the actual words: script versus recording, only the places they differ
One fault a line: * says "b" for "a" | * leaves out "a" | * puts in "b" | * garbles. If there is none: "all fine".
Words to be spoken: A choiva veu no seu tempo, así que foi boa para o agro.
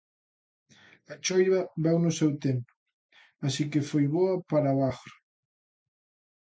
all fine